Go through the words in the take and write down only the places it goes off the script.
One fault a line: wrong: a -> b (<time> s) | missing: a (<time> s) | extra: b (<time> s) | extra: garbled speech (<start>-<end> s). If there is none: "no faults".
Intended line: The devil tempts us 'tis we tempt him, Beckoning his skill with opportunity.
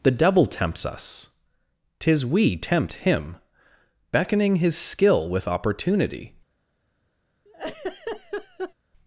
no faults